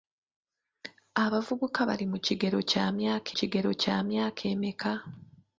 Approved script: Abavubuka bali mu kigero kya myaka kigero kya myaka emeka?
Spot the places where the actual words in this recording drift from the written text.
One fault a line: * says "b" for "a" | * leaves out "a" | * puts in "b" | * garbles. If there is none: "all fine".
all fine